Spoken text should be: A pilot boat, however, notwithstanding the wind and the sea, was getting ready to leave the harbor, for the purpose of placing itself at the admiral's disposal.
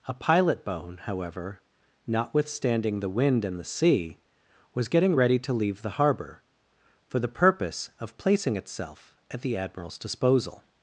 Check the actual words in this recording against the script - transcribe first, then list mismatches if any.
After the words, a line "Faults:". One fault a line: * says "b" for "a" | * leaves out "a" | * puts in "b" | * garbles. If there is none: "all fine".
A pilot bone, however, notwithstanding the wind and the sea, was getting ready to leave the harbor, for the purpose of placing itself at the admiral's disposal.
Faults:
* says "bone" for "boat"